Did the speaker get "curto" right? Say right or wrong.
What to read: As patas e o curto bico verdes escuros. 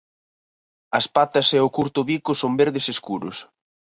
right